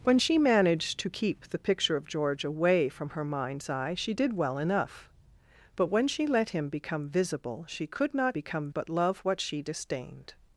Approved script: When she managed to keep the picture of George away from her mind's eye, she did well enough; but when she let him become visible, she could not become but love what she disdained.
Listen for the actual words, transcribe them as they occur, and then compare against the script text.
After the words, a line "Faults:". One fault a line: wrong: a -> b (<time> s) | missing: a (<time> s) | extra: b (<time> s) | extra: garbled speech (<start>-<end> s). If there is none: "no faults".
When she managed to keep the picture of George away from her mind's eye, she did well enough; but when she let him become visible, she could not become but love what she disdained.
Faults:
no faults